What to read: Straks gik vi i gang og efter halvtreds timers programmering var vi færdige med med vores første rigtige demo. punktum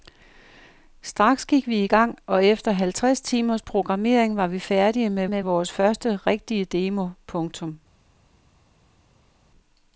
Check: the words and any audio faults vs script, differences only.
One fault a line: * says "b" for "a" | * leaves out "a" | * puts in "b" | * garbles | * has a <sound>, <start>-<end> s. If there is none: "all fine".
all fine